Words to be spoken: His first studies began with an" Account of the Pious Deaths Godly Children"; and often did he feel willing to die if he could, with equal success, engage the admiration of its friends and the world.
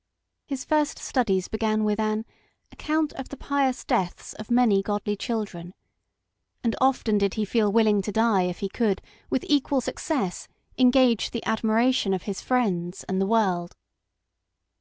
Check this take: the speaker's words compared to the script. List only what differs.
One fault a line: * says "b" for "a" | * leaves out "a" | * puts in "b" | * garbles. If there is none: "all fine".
* puts in "of many"
* says "his" for "its"